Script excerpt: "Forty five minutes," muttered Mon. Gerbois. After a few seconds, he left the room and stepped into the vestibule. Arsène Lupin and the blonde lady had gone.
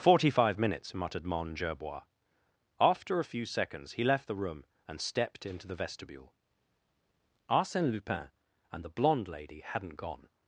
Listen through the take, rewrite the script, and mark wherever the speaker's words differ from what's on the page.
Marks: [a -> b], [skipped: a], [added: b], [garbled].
"Forty five minutes," muttered Mon. Gerbois. After a few seconds, he left the room and stepped into the vestibule. Arsène Lupin and the blonde lady [had -> hadn't] gone.